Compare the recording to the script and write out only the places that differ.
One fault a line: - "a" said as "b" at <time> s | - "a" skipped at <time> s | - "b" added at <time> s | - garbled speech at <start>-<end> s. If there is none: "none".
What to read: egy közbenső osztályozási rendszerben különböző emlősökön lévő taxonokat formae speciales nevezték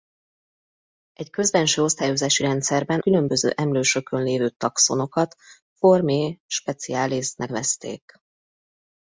none